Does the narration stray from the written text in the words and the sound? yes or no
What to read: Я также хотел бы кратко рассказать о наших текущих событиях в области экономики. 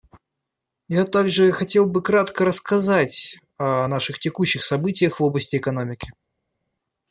no